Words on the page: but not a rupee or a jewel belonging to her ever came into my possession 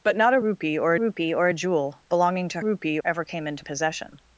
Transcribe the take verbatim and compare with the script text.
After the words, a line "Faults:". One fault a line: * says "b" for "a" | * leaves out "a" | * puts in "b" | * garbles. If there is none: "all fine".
but not a rupee or rupee or a jewel belonging to rupee ever came into possession
Faults:
* puts in "rupee or"
* says "rupee" for "her"
* leaves out "my"